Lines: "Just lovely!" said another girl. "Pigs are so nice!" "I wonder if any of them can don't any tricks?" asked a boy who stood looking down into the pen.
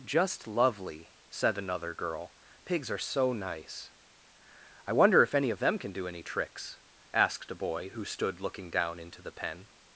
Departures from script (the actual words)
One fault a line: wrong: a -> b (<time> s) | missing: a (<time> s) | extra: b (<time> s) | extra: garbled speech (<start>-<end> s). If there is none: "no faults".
wrong: don't -> do (5.9 s)